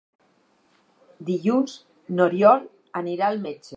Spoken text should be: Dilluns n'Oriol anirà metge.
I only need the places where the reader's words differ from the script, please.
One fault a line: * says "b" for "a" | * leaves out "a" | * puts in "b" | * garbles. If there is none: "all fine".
* puts in "al"